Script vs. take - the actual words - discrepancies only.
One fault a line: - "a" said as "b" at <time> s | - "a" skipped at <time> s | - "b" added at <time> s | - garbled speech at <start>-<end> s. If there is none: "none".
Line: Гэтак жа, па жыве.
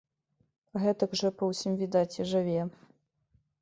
- "ўсім відаць і" added at 1.5 s